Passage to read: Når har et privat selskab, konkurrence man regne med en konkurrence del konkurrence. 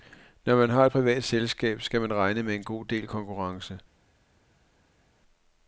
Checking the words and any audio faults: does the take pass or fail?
fail